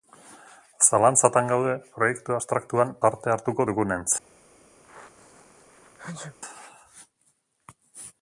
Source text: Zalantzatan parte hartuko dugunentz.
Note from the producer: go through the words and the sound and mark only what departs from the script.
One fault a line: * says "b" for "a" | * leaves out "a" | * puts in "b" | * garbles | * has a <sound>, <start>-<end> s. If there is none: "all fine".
* puts in "gaude proiektu abstraktuan"
* has a sneeze, 4.8-6.4 s